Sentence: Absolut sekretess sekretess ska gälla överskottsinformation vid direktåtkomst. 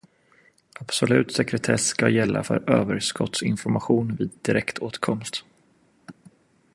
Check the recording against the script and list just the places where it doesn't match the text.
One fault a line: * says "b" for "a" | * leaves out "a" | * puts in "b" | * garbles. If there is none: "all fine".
* leaves out "sekretess"
* puts in "för"